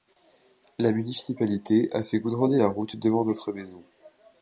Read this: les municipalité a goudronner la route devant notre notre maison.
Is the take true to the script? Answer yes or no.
no